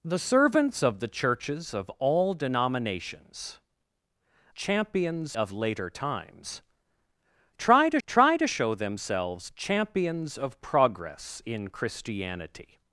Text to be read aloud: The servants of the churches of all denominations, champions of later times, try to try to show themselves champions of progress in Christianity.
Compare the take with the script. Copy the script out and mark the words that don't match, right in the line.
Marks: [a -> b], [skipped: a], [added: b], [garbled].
The servants of the churches of all denominations, champions of later times, try to try to show themselves champions of progress in Christianity.